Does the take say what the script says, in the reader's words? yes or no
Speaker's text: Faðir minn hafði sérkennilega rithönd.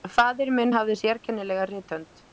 yes